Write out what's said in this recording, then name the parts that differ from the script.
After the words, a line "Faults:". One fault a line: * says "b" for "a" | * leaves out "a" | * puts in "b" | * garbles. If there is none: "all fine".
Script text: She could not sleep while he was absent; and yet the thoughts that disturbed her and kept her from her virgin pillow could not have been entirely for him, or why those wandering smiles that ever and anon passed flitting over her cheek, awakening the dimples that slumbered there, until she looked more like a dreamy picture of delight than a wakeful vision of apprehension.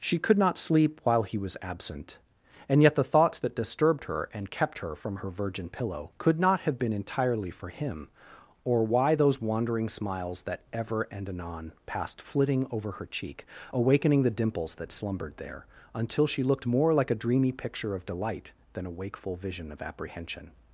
She could not sleep while he was absent; and yet the thoughts that disturbed her and kept her from her virgin pillow could not have been entirely for him, or why those wandering smiles that ever and anon passed flitting over her cheek, awakening the dimples that slumbered there, until she looked more like a dreamy picture of delight than a wakeful vision of apprehension.
Faults:
all fine